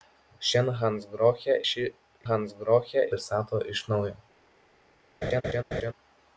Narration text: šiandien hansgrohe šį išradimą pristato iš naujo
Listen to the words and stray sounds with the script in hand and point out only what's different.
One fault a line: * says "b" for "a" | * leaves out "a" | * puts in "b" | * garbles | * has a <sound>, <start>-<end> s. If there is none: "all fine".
* says "hansgrohe" for "išradimą"
* has a laugh, 5.2-5.9 s